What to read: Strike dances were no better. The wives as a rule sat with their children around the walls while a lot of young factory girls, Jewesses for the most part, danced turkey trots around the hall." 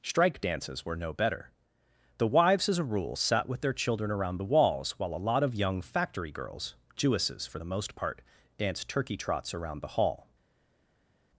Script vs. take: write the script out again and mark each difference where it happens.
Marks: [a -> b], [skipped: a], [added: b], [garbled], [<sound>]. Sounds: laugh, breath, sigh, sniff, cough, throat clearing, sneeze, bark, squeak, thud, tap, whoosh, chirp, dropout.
Strike dances were no better. The wives as a rule sat with their children around the walls while a lot of young factory girls, Jewesses for the most part, danced turkey trots around the hall."